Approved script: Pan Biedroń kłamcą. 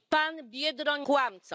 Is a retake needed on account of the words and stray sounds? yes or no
no